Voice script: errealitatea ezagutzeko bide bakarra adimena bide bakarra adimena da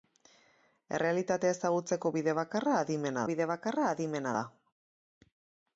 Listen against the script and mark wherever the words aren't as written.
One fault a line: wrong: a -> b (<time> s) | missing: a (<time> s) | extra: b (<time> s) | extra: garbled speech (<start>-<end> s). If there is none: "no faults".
no faults